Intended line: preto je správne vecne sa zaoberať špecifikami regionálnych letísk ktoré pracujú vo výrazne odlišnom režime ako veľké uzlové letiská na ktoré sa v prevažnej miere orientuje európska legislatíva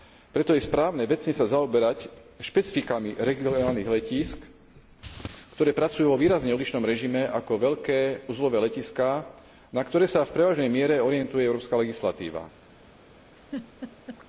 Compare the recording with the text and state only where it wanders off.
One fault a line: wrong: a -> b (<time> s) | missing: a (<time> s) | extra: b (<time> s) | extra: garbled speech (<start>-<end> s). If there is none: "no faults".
no faults